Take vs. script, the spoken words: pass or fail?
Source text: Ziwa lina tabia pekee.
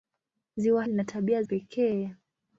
pass